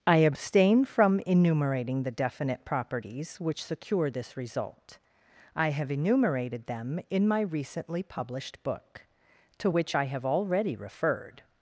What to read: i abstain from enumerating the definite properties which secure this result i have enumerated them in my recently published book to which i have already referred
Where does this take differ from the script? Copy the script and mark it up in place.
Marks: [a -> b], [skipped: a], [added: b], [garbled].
i abstain from enumerating the definite properties which secure this result i have enumerated them in my recently published book to which i have already referred